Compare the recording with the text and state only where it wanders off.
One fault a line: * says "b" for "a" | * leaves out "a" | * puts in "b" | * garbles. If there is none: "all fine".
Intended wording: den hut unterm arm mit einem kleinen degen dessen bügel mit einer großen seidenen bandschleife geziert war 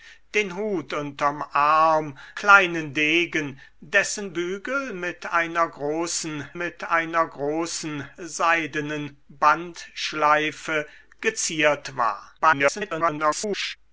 * leaves out "mit einem"
* puts in "mit einer großen"
* garbles